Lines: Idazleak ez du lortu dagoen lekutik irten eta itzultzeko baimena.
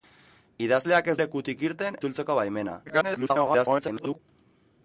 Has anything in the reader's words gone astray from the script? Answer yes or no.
yes